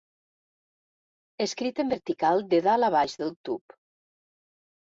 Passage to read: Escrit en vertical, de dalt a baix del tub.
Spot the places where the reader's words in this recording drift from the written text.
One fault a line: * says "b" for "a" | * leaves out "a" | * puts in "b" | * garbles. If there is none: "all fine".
all fine